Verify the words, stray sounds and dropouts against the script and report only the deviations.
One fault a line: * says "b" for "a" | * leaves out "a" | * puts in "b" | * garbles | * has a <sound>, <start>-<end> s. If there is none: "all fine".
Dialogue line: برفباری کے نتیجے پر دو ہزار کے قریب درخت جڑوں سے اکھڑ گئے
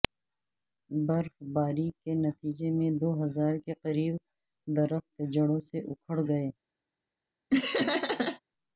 * says "میں" for "پر"
* has a laugh, 7.5-8.4 s